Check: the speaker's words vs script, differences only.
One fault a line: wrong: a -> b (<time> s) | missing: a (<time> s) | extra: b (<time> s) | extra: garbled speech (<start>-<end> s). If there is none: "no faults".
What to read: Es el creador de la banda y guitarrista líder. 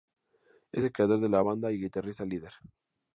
no faults